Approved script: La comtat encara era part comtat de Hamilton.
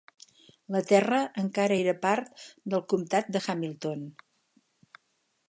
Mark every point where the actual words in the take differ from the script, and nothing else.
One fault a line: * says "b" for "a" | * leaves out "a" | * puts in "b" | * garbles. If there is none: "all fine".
* says "terra" for "comtat"
* puts in "del"